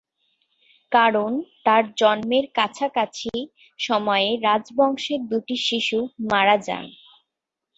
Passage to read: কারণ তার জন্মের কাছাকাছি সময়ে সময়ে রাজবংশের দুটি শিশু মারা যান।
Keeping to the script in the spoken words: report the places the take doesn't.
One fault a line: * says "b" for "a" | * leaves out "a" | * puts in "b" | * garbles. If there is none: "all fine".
* leaves out "সময়ে"